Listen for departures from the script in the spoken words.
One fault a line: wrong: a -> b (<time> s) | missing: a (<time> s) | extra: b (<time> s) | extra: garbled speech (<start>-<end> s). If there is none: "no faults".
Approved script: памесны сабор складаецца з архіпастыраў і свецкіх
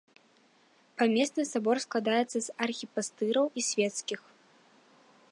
no faults